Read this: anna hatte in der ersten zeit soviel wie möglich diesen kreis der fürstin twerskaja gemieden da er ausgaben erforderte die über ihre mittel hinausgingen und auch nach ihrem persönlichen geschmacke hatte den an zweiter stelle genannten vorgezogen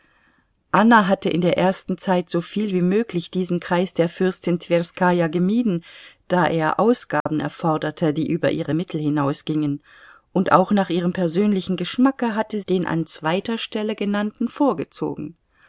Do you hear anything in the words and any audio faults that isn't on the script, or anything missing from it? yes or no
yes